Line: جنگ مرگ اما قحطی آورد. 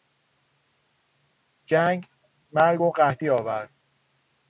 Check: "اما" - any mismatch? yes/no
yes